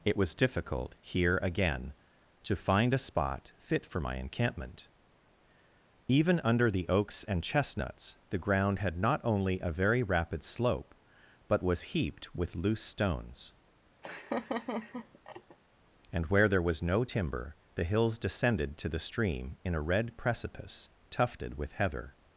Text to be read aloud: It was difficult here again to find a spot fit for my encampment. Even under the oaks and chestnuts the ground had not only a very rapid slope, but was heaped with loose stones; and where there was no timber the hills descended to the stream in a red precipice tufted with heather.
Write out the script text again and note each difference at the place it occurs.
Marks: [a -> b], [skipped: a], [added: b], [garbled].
It was difficult here again to find a spot fit for my encampment. Even under the oaks and chestnuts the ground had not only a very rapid slope, but was heaped with loose stones; and where there was no timber the hills descended to the stream in a red precipice tufted with heather.